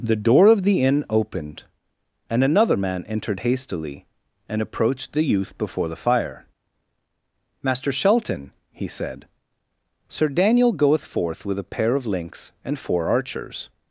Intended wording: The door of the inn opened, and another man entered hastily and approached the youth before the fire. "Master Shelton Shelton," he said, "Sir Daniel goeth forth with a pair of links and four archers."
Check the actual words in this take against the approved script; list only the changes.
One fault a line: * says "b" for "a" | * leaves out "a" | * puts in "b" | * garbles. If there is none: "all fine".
* leaves out "Shelton"